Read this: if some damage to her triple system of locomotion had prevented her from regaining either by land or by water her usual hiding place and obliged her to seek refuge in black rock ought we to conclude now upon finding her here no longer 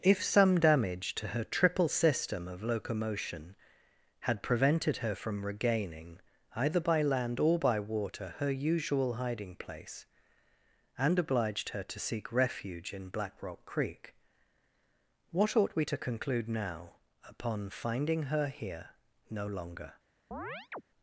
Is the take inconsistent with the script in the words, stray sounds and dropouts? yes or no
yes